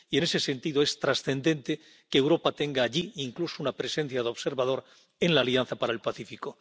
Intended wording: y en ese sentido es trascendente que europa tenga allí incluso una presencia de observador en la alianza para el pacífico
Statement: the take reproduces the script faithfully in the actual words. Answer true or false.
true